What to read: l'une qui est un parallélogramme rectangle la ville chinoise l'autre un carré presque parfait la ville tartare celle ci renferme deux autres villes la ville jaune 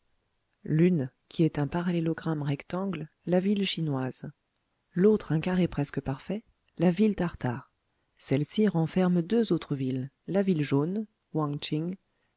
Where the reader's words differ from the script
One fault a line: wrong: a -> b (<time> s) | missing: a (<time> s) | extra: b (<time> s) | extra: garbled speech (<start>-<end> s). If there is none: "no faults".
no faults